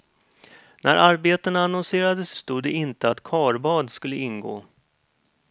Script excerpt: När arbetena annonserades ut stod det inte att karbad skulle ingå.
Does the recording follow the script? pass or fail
fail